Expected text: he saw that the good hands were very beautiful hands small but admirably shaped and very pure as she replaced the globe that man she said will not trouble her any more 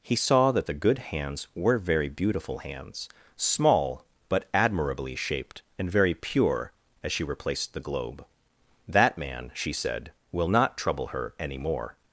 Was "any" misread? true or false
false